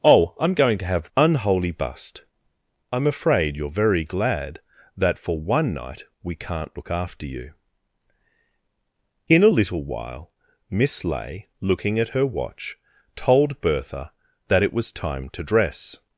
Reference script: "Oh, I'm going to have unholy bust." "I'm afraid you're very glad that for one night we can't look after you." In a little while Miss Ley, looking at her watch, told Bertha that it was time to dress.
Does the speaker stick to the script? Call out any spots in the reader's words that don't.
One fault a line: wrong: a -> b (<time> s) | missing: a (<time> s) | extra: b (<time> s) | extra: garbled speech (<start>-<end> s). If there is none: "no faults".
no faults